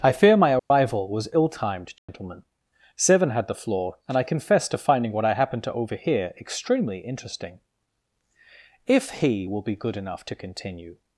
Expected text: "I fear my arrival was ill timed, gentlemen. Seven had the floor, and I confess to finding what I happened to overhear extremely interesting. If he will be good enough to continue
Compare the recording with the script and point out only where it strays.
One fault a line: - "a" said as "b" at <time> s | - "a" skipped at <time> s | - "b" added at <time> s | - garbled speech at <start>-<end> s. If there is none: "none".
none